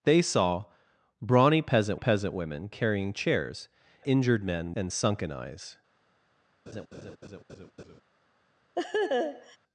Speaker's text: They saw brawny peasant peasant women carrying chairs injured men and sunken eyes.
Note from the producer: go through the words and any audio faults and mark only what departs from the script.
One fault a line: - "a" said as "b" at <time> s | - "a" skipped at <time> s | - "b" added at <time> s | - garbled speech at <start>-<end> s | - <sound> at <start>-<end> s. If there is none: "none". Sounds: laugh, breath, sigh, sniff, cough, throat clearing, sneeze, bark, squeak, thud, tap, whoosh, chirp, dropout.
- laugh at 6.7-8.0 s
- laugh at 8.7-9.6 s